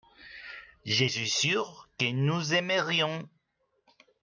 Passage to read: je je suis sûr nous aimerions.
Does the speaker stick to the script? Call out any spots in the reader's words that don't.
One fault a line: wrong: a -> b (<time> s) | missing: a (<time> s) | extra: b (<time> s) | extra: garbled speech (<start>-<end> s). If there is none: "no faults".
missing: je (1.1 s)
extra: que (2.0 s)